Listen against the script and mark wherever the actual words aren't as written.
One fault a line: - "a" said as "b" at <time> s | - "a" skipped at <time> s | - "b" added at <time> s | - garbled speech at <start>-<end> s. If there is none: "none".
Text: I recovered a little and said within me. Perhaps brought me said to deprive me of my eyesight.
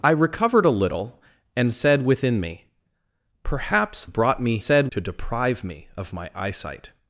none